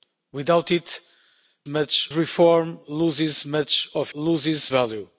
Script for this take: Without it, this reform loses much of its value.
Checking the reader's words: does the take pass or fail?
fail